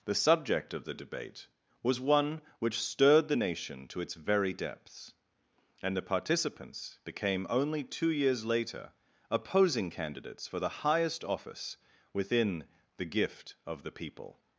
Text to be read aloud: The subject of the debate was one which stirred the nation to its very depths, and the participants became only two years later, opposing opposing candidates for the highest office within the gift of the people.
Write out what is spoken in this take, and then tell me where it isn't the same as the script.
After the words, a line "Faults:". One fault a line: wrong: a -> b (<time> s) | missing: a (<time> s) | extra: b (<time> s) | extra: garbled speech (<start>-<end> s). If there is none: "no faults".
The subject of the debate was one which stirred the nation to its very depths, and the participants became only two years later, opposing candidates for the highest office within the gift of the people.
Faults:
missing: opposing (9.9 s)